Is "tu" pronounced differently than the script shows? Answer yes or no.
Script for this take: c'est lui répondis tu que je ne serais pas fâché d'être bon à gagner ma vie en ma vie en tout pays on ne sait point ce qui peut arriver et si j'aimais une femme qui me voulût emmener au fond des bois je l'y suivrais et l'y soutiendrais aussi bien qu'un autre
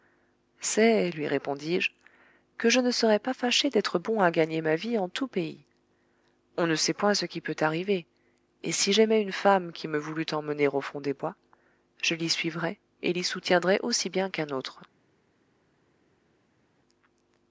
yes